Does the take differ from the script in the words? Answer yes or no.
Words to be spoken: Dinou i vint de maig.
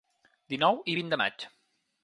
no